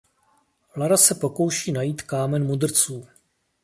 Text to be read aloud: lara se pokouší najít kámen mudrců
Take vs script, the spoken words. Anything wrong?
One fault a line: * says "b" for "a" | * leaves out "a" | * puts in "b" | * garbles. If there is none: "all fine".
all fine